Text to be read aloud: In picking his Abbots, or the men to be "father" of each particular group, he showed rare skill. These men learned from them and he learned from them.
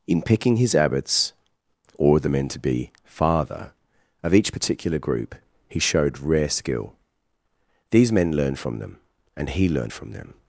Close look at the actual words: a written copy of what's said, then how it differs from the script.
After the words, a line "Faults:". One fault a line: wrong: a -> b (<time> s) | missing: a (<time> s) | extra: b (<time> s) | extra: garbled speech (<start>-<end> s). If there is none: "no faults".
In picking his Abbots, or the men to be "father" of each particular group, he showed rare skill. These men learned from them and he learned from them.
Faults:
no faults